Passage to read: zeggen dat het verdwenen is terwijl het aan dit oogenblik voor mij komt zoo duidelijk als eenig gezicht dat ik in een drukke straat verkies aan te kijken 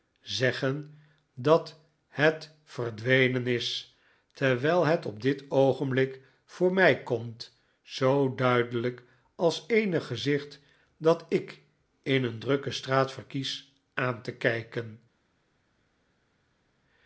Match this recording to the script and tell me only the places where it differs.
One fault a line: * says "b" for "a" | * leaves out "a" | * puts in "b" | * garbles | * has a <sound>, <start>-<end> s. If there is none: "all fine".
* says "op" for "aan"